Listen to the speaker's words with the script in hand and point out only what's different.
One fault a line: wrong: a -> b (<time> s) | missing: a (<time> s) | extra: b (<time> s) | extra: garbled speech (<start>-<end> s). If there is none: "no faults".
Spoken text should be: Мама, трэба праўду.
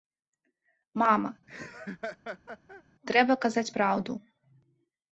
extra: казаць (3.5 s)